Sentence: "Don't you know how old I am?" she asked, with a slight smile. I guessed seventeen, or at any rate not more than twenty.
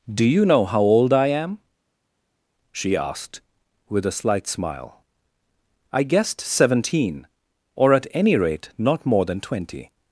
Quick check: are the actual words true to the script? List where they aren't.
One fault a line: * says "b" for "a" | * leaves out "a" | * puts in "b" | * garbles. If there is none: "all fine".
* says "Do" for "Don't"